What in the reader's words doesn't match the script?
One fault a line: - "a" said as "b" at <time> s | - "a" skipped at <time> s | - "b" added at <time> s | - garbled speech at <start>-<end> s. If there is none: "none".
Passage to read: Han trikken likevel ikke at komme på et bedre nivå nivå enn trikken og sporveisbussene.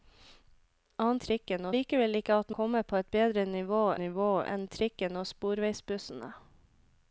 none